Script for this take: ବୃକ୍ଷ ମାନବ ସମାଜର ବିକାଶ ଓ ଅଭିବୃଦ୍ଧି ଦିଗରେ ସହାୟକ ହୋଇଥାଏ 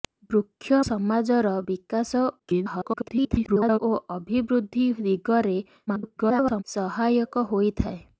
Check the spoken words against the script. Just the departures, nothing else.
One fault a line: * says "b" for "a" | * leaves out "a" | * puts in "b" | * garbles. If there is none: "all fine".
* leaves out "ମାନବ"
* garbles
* garbles